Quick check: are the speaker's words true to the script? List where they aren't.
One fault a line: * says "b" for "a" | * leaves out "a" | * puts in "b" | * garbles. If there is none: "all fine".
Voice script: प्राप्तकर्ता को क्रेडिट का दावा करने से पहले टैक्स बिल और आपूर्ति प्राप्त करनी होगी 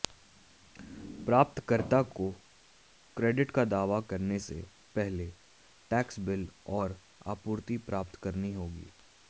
all fine